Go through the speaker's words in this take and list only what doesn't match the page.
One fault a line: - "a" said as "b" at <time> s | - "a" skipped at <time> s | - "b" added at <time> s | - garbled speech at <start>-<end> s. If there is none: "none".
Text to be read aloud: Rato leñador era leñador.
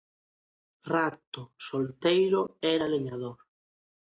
- "leñador" said as "solteiro" at 1.7 s